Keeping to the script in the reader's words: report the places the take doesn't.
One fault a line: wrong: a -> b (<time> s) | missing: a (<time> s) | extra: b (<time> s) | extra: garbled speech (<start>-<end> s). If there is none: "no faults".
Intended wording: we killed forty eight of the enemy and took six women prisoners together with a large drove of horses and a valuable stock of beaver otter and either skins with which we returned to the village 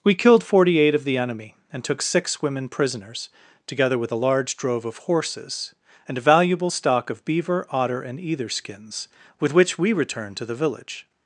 no faults